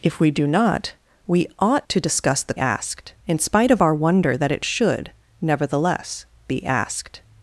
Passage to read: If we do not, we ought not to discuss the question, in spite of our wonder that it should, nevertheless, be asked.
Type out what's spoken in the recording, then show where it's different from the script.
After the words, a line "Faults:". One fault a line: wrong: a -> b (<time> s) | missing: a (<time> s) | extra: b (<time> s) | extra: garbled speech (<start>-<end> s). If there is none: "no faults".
If we do not, we ought to discuss the asked, in spite of our wonder that it should, nevertheless, be asked.
Faults:
missing: not (1.9 s)
wrong: question -> asked (2.6 s)